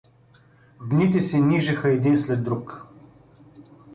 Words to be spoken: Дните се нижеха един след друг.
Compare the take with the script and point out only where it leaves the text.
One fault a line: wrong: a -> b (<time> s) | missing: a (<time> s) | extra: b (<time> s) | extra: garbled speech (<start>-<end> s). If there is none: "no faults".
no faults